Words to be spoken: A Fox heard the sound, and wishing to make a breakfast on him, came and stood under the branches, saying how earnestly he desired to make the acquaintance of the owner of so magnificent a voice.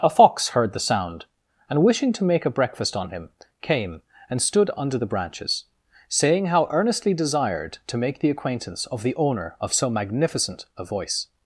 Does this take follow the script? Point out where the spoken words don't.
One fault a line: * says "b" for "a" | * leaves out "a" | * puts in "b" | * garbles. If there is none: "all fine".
* leaves out "he"